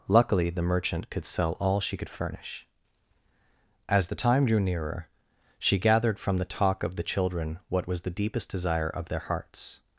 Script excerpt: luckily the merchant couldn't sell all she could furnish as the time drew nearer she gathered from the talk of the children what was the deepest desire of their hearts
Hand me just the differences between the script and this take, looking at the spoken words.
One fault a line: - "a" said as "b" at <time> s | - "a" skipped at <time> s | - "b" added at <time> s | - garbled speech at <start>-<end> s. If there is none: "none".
- "couldn't" said as "could" at 1.1 s